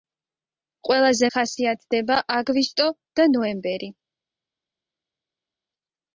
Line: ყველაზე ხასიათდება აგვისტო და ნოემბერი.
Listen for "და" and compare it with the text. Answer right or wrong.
right